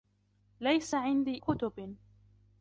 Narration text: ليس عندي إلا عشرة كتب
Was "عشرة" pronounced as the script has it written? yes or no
no